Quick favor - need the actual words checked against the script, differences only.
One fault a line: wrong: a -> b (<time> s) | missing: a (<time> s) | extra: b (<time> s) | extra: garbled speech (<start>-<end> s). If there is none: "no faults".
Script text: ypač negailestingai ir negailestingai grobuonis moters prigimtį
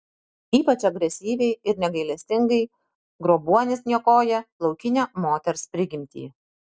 wrong: negailestingai -> agresyviai (0.9 s)
extra: niokoja laukinę (3.9 s)